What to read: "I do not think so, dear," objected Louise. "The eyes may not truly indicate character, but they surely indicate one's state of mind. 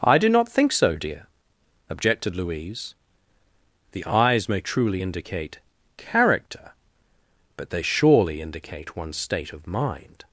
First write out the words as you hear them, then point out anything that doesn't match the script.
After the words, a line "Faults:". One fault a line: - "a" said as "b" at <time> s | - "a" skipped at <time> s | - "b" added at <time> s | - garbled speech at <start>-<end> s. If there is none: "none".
"I do not think so, dear," objected Louise. "The eyes may truly indicate character, but they surely indicate one's state of mind.
Faults:
- "not" skipped at 4.6 s